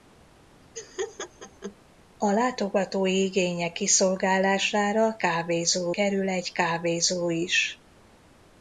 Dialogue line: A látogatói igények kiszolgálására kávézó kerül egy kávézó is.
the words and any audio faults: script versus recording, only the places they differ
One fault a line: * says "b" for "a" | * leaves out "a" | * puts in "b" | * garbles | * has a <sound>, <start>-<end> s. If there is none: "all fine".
* has a laugh, 0.7-1.8 s